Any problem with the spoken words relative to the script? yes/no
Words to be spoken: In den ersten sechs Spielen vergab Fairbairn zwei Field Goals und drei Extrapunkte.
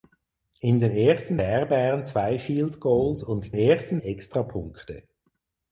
yes